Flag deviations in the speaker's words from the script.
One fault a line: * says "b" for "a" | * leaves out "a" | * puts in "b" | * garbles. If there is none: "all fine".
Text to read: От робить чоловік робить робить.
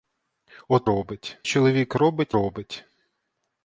all fine